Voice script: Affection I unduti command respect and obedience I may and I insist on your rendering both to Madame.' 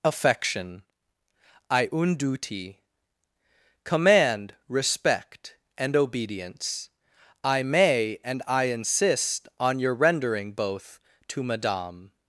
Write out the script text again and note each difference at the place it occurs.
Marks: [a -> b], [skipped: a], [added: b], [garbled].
Affection I unduti command respect and obedience I may and I insist on your rendering both to Madame.'